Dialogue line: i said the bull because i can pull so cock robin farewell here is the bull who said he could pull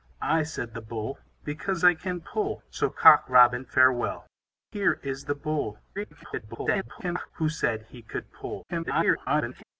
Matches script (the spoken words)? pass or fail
fail